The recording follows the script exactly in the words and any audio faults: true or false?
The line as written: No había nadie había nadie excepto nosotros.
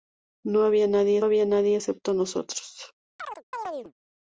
false